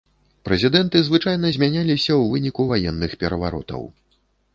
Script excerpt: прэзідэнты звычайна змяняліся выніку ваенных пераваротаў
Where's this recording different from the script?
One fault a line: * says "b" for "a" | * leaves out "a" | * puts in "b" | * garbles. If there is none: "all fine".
* puts in "ў"